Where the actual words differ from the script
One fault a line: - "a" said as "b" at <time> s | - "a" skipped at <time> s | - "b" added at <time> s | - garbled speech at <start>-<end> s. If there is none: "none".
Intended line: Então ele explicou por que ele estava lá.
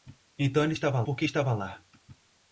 - "explicou" said as "estava" at 0.7 s
- "ele" skipped at 1.2 s